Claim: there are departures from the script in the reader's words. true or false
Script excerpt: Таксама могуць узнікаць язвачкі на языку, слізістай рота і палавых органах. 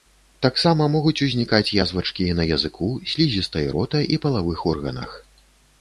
false